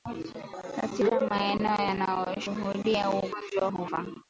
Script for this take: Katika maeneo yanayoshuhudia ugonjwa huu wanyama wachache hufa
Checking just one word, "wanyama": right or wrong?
wrong